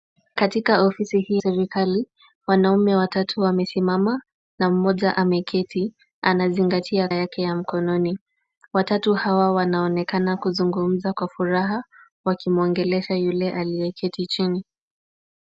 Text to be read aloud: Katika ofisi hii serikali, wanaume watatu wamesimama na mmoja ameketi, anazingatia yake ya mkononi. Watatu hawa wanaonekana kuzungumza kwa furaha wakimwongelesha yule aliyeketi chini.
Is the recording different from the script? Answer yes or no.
no